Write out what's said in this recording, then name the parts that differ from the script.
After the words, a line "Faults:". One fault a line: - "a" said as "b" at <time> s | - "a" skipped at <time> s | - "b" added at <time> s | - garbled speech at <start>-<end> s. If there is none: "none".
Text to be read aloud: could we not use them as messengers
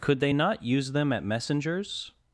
could they not use them at messengers
Faults:
- "we" said as "they" at 0.2 s
- "as" said as "at" at 1.1 s